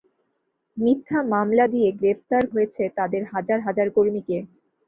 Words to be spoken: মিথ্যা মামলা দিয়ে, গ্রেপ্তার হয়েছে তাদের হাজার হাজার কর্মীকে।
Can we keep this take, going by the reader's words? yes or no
yes